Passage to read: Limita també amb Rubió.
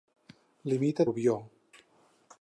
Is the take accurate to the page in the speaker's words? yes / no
no